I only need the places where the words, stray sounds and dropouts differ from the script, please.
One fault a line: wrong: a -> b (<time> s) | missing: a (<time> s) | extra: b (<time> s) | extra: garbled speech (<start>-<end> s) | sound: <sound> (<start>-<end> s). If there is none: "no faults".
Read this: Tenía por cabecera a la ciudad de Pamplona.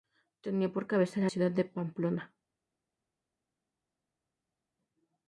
missing: la (1.3 s)